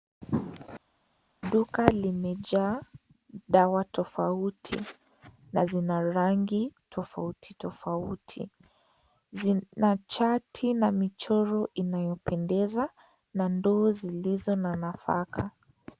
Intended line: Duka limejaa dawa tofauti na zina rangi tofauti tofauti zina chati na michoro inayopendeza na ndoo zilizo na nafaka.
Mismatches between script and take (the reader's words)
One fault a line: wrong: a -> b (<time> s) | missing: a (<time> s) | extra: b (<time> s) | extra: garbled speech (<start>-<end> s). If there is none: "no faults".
no faults